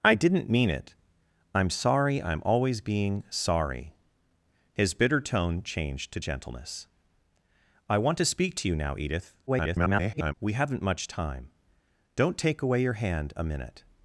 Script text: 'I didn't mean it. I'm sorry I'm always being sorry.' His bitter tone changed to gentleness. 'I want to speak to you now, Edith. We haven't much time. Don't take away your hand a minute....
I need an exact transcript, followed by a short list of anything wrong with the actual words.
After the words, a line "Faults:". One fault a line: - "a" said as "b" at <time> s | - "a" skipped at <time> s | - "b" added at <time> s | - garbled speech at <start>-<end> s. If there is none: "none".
'I didn't mean it. I'm sorry I'm always being sorry.' His bitter tone changed to gentleness. 'I want to speak to you now, Edith. [garbled] We haven't much time. Don't take away your hand a minute....
Faults:
- garbled speech at 9.5-10.3 s